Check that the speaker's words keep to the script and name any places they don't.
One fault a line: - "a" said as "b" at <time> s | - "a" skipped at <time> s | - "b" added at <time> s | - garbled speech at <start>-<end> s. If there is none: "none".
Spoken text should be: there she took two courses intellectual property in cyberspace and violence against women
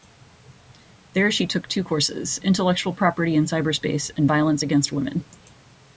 none